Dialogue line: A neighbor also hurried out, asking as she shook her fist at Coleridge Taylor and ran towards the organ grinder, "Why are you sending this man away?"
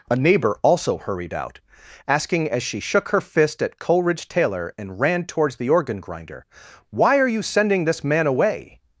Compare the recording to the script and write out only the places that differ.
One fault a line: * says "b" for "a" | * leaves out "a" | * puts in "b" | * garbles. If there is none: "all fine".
all fine